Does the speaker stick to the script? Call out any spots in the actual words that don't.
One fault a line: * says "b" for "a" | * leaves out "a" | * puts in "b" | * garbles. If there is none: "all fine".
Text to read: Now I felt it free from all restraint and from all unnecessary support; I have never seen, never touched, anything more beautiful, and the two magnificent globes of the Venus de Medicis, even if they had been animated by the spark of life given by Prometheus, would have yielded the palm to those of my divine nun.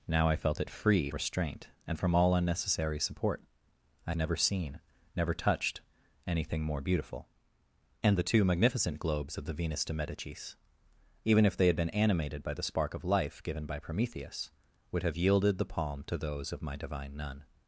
* leaves out "from all"
* leaves out "have"